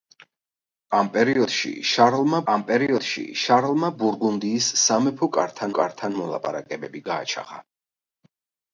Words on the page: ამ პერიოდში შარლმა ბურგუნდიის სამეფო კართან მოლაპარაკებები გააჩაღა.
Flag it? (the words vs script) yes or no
yes